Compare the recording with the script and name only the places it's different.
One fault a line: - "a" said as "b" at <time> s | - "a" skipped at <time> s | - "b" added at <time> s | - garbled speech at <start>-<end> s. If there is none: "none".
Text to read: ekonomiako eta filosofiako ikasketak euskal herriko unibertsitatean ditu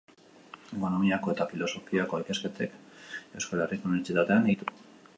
none